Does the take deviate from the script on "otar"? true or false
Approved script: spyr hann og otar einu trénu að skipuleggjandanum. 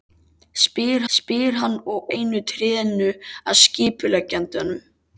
true